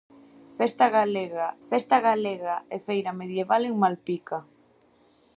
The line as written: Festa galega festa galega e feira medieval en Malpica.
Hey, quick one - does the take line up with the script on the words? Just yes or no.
yes